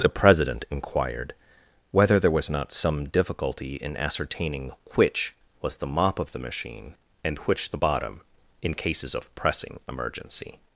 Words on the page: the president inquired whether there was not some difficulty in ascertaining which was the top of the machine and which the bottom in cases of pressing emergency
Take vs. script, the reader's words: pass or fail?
fail